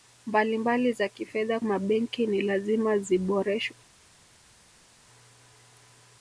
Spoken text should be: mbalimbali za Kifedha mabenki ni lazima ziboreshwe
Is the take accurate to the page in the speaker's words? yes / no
yes